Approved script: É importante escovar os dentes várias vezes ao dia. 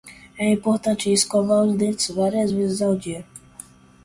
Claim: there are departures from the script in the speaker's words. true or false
false